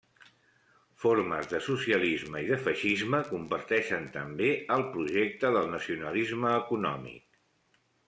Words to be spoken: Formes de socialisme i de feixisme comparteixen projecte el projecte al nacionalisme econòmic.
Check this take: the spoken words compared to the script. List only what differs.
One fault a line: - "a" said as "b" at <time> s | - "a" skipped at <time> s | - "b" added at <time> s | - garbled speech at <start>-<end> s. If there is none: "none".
- "projecte" said as "també" at 4.2 s
- "al" said as "del" at 5.6 s